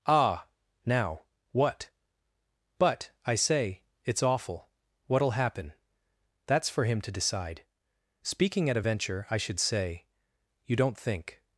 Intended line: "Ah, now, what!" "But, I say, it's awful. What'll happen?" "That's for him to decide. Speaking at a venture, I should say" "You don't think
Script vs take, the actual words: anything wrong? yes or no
no